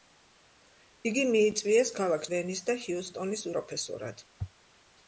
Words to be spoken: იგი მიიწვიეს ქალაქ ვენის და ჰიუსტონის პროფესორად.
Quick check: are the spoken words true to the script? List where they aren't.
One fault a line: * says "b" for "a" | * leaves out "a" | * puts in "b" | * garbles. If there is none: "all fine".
all fine